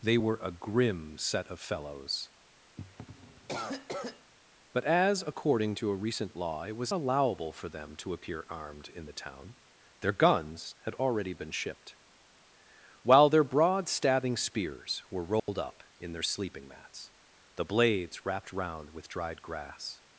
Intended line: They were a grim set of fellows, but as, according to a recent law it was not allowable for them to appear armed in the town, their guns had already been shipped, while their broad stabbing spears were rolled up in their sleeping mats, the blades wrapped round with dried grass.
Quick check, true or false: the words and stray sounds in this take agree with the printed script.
false